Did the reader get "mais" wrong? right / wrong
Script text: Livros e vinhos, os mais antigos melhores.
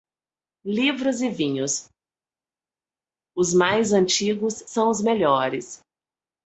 right